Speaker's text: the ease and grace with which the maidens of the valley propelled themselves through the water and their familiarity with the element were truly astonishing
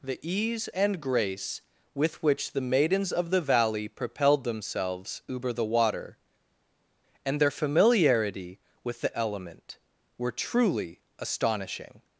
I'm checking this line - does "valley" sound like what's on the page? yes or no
yes